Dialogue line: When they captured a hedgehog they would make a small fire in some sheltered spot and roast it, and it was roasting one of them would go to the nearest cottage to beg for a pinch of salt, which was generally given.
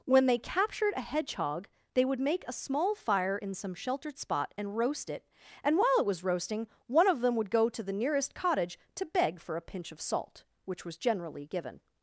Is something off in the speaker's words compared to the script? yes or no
yes